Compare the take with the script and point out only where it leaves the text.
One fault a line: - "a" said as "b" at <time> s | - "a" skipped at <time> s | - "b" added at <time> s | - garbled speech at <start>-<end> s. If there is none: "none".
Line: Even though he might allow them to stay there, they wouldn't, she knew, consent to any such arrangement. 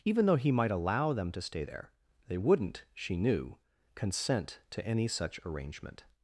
none